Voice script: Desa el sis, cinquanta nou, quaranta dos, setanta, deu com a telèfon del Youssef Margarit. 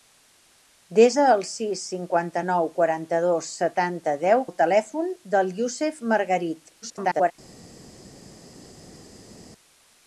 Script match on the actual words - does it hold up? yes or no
no